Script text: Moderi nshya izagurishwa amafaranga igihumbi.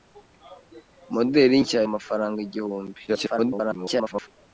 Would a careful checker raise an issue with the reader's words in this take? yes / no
yes